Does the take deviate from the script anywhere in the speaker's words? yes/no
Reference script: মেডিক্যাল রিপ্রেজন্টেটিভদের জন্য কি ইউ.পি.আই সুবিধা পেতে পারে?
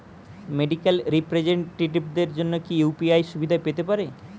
no